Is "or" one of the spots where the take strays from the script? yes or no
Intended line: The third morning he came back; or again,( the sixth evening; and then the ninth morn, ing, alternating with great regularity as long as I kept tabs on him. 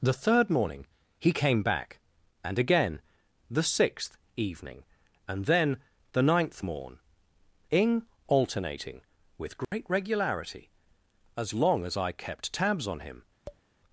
yes